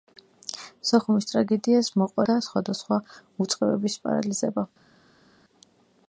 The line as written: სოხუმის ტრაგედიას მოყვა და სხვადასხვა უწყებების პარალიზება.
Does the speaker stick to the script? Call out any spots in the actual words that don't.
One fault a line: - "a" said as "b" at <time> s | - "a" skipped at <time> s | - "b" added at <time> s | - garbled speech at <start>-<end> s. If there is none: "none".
none